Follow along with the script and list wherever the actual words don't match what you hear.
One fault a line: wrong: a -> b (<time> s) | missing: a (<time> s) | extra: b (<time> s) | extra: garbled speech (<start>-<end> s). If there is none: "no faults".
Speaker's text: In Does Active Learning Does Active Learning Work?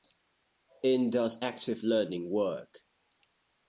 missing: Does Active Learning (2.3 s)